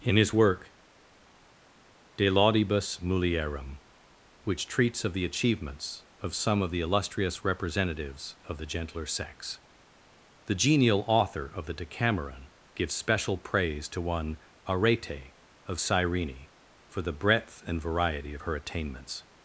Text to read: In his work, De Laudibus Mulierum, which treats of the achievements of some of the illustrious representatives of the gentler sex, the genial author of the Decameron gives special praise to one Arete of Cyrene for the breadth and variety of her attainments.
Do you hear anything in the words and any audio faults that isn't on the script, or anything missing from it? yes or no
no